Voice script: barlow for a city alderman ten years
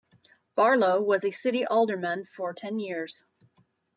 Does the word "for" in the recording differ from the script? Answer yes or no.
yes